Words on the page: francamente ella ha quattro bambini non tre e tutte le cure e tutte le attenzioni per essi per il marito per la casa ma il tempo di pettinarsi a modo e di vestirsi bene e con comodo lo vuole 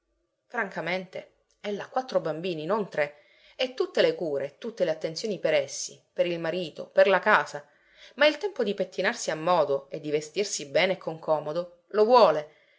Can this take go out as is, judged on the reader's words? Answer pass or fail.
pass